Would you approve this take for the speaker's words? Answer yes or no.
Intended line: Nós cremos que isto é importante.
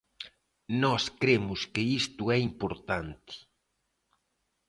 yes